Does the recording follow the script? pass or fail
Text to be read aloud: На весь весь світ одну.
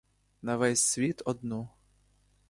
fail